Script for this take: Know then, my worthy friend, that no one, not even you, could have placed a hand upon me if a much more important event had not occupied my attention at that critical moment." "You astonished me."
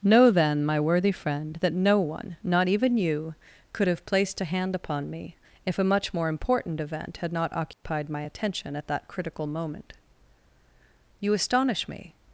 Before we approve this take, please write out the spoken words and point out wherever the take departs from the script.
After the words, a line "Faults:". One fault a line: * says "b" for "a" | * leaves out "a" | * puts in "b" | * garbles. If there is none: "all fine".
Know then, my worthy friend, that no one, not even you, could have placed a hand upon me if a much more important event had not occupied my attention at that critical moment." "You astonish me."
Faults:
* says "astonish" for "astonished"